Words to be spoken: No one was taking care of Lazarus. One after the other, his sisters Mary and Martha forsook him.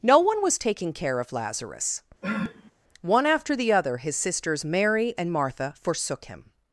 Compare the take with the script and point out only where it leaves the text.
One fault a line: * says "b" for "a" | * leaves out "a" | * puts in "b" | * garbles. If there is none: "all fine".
all fine